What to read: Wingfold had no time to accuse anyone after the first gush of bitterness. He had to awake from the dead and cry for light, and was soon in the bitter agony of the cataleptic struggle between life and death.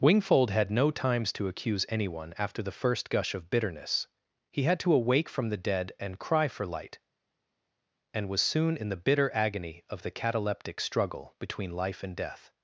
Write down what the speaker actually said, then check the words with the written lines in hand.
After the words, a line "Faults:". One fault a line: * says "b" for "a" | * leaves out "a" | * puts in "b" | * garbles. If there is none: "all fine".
Wingfold had no times to accuse anyone after the first gush of bitterness. He had to awake from the dead and cry for light, and was soon in the bitter agony of the cataleptic struggle between life and death.
Faults:
* says "times" for "time"